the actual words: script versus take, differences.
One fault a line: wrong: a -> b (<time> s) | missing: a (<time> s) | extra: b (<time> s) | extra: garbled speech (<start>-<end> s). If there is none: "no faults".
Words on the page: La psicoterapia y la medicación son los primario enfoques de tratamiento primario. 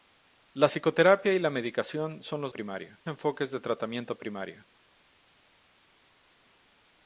no faults